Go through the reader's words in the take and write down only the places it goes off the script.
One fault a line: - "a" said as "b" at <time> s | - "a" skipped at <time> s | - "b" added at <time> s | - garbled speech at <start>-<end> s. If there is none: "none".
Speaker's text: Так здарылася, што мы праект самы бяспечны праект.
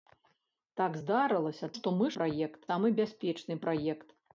none